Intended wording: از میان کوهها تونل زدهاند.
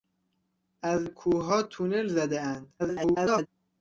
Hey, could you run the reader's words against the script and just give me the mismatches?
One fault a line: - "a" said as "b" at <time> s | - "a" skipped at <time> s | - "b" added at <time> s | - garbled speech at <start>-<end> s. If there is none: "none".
- "میان" skipped at 1.1 s
- garbled speech at 2.8-3.5 s